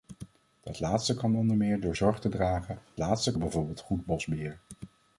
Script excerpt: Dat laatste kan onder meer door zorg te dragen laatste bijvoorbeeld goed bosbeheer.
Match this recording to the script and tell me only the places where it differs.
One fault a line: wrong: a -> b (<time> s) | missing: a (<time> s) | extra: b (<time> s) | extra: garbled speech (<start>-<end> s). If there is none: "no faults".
no faults